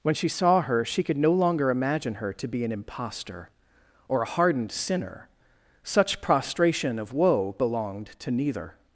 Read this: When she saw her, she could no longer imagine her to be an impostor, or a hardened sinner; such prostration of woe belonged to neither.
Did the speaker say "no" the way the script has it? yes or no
yes